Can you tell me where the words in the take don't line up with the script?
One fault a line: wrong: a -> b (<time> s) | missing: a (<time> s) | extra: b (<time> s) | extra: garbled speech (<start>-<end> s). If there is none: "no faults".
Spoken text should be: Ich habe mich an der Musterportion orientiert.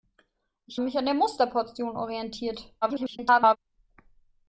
missing: habe (0.8 s)
extra: garbled speech (2.8-3.6 s)